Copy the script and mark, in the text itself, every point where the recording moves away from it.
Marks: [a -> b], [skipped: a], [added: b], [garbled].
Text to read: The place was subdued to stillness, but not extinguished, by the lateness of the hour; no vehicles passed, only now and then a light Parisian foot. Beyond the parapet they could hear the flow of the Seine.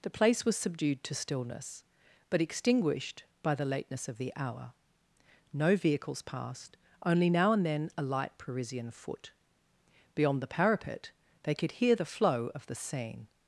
The place was subdued to stillness, but [skipped: not] extinguished, by the lateness of the hour; no vehicles passed, only now and then a light Parisian foot. Beyond the parapet they could hear the flow of the Seine.